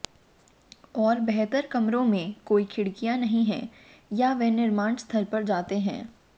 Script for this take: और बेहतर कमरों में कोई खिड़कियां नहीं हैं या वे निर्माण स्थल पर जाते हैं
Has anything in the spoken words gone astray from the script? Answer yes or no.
no